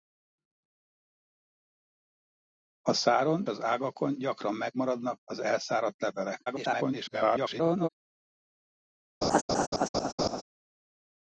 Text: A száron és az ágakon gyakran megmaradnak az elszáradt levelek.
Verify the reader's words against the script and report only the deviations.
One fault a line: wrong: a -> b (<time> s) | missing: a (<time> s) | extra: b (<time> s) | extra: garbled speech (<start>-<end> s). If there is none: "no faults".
missing: és (3.5 s)
extra: garbled speech (6.5-7.9 s)